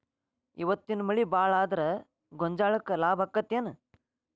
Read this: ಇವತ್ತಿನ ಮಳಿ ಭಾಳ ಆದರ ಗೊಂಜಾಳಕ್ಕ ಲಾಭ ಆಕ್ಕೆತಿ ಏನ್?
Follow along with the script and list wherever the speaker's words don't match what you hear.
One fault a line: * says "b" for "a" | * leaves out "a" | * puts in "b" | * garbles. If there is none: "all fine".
all fine